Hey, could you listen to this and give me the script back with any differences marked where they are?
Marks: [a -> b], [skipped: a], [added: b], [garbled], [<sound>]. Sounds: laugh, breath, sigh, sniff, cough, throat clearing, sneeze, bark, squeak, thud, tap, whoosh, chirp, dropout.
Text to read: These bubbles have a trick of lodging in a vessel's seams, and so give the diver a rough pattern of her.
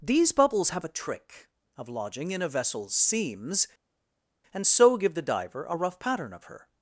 These bubbles have a trick of lodging in a vessel's seams, and so give the diver a rough pattern of her.